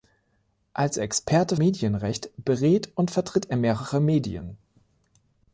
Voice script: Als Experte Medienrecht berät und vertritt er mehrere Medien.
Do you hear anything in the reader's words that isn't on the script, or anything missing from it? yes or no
no